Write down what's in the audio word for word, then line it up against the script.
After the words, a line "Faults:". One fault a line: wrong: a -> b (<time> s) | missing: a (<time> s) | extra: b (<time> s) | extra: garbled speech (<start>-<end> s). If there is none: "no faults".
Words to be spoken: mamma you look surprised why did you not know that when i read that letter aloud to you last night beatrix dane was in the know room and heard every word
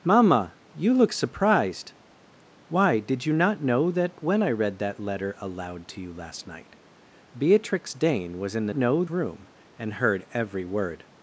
mamma you look surprised why did you not know that when i read that letter aloud to you last night beatrix dane was in the know room and heard every word
Faults:
no faults